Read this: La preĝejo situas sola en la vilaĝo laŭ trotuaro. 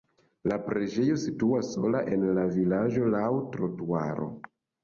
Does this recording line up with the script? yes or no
yes